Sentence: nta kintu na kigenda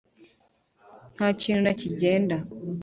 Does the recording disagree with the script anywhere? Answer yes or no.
no